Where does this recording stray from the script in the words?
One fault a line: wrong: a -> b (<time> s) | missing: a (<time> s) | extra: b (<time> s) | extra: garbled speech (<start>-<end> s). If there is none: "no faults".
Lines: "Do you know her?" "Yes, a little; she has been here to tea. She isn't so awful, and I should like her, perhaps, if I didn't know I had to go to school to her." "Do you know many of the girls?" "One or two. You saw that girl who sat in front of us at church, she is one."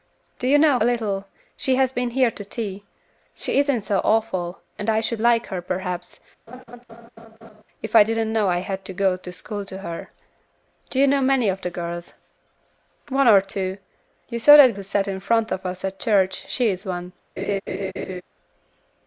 missing: her Yes (0.8 s)
missing: girl (14.7 s)